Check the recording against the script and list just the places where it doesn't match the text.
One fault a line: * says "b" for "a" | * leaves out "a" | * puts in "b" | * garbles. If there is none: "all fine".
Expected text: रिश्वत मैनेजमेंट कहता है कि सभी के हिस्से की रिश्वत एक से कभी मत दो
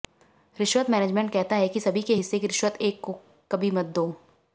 * says "को" for "से"